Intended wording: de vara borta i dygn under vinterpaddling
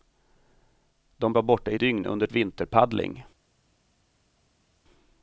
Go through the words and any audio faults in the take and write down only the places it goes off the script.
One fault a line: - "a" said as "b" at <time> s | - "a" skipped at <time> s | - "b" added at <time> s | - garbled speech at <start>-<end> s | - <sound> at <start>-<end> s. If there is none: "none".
none